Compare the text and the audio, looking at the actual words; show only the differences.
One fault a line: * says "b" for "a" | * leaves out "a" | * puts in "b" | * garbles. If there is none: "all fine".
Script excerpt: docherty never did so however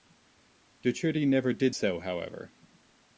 all fine